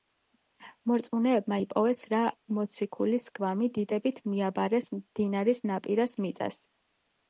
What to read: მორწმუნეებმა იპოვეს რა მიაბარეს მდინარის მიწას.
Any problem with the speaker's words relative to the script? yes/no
yes